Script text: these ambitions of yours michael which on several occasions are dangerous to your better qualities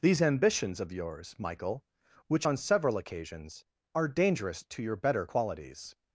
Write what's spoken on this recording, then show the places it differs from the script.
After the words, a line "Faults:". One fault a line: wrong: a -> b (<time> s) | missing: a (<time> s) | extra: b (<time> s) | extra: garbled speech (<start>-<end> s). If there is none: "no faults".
these ambitions of yours michael which on several occasions are dangerous to your better qualities
Faults:
no faults